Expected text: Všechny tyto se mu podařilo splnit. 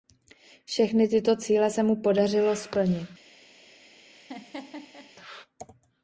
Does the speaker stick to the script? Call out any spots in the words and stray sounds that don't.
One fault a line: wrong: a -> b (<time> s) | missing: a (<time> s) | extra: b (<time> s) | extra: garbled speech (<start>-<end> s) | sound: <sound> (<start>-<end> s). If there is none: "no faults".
extra: cíle (1.4 s)
sound: laugh (4.1-5.1 s)